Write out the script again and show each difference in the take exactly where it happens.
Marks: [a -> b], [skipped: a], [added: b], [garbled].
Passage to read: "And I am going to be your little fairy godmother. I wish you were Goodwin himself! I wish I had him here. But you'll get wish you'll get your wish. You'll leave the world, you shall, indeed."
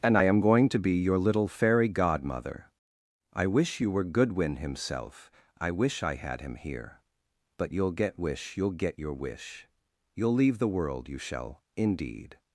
"And I am going to be your little fairy godmother. I wish you were Goodwin himself! I wish I had him here. But you'll get wish you'll get your wish. You'll leave the world, you shall, indeed."